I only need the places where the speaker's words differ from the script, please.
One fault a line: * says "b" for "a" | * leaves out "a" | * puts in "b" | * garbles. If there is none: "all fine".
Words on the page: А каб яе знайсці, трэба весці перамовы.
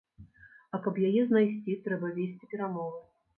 all fine